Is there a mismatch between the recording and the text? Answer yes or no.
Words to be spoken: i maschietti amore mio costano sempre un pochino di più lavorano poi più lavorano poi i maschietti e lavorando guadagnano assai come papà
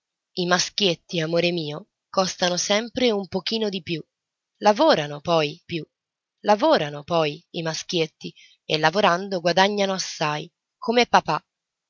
no